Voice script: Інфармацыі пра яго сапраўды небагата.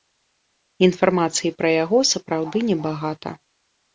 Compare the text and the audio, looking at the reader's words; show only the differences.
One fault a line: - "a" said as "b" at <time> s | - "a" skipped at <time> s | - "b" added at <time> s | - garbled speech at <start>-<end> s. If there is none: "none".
none